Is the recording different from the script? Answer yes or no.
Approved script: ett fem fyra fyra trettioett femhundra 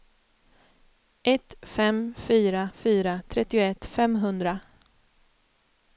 no